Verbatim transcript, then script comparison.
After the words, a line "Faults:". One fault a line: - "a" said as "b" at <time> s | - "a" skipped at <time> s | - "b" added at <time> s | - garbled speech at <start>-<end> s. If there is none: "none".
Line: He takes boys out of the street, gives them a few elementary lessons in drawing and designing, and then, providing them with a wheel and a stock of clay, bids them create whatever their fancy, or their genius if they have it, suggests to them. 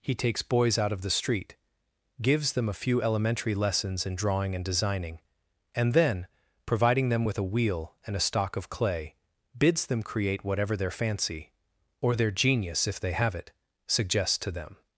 He takes boys out of the street, gives them a few elementary lessons in drawing and designing, and then, providing them with a wheel and a stock of clay, bids them create whatever their fancy, or their genius if they have it, suggests to them.
Faults:
none